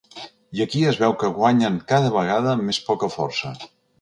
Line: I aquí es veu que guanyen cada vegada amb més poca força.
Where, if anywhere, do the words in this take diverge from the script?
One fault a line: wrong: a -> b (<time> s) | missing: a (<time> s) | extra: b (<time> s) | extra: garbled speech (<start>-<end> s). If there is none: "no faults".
no faults